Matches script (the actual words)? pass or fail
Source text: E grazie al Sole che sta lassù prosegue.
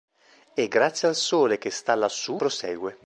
pass